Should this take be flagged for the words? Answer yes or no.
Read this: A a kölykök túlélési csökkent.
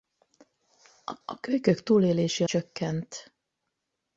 no